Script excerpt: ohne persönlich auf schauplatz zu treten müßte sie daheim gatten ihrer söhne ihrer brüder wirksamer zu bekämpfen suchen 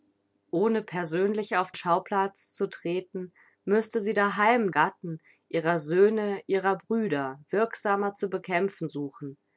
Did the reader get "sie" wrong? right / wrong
right